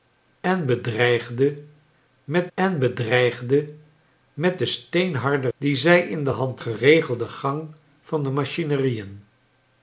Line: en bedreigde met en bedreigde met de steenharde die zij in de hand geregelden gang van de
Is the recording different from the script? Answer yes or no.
no